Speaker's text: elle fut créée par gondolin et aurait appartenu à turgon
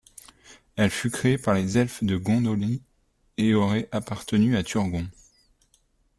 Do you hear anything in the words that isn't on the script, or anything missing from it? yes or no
yes